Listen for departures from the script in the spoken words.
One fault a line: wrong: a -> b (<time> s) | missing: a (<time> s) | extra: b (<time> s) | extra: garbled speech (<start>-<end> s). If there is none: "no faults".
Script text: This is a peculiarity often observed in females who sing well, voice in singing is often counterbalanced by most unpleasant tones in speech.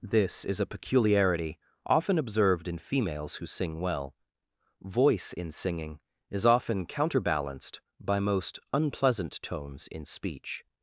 no faults